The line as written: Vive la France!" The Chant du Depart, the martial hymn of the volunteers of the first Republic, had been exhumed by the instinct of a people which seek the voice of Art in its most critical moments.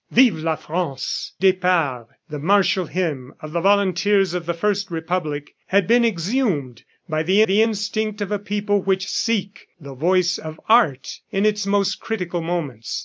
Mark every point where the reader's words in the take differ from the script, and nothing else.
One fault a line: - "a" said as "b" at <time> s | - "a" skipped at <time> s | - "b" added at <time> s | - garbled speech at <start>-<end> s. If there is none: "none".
- "The Chant du" skipped at 1.3 s
- "the" added at 7.4 s